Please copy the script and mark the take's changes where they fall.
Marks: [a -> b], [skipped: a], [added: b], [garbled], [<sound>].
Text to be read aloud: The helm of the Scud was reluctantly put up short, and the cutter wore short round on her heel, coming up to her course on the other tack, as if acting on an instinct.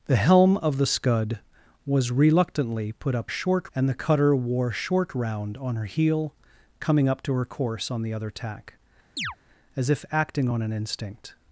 The helm of the Scud was reluctantly put up short, and the cutter wore short round on her heel, coming up to her course on the other tack, [chirp] as if acting on an instinct.